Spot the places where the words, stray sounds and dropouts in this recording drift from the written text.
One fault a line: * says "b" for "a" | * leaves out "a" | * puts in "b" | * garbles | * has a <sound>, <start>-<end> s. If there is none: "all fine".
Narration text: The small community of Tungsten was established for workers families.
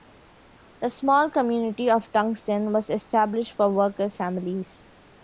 all fine